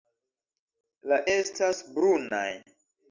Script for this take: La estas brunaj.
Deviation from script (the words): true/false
false